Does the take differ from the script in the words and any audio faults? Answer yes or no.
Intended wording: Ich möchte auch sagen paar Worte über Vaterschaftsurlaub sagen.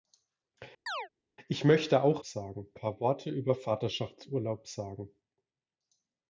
yes